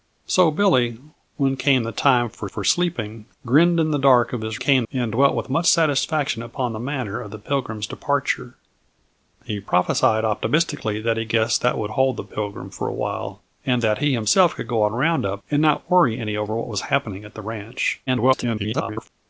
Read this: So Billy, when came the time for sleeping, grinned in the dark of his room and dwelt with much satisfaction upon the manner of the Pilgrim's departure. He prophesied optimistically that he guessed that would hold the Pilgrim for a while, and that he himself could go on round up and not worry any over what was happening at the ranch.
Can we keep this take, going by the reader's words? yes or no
no